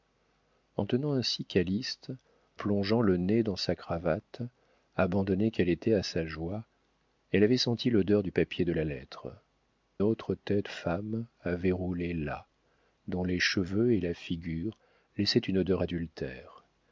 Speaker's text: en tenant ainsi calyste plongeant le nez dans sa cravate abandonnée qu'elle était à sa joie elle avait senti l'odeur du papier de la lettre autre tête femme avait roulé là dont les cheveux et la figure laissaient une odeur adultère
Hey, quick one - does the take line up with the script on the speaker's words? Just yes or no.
yes